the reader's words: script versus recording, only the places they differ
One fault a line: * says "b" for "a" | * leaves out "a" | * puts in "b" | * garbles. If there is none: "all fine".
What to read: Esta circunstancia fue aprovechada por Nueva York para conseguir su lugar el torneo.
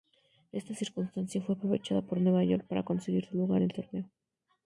all fine